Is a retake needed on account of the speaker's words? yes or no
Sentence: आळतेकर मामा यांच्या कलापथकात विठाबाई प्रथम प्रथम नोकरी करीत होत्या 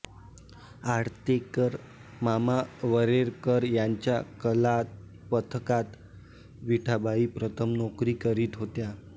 yes